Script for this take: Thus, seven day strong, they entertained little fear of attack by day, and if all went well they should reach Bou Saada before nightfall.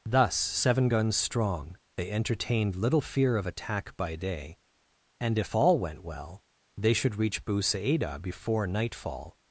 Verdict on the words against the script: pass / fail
fail